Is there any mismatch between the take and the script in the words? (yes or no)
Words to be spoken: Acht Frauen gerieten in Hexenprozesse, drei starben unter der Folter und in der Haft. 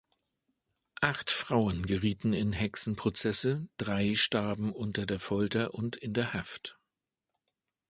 no